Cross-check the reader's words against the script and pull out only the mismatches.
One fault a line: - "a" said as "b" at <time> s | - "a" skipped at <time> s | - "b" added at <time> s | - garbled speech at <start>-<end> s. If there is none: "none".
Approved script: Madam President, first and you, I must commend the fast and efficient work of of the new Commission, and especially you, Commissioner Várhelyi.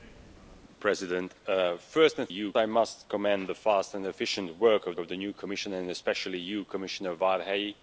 none